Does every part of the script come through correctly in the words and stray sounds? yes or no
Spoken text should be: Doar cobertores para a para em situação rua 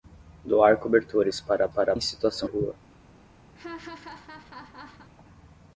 no